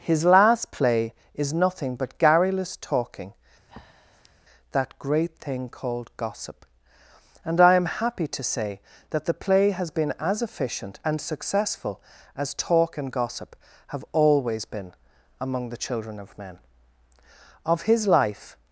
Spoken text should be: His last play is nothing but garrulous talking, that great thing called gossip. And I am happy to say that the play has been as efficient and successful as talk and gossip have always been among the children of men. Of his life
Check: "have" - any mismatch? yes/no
no